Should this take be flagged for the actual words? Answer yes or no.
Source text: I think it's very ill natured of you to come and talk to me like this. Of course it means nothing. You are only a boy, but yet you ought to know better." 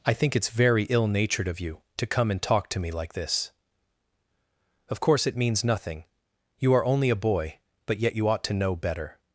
no